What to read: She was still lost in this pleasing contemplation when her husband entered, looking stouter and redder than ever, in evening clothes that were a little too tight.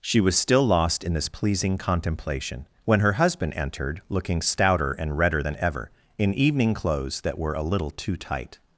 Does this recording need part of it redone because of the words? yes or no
no